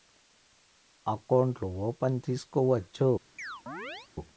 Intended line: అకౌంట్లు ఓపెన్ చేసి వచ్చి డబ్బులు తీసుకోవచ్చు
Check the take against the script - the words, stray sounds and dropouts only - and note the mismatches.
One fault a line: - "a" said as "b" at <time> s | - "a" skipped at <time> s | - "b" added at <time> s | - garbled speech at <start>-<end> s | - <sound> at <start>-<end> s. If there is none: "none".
- "చేసి వచ్చి డబ్బులు" skipped at 2.2 s
- chirp at 3.4-4.1 s